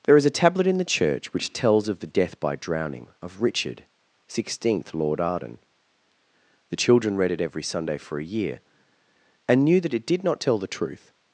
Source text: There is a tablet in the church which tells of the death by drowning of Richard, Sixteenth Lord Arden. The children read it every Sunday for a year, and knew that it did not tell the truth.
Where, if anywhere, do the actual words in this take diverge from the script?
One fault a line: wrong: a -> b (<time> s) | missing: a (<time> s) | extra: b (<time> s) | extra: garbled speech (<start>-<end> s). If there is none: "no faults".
no faults